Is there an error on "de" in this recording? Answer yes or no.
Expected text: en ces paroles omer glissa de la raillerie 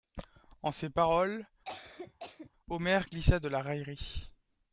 no